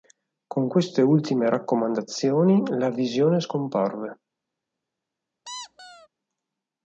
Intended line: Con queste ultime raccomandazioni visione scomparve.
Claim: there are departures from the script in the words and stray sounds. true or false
true